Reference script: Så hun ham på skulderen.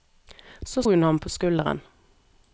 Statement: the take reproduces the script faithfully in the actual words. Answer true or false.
true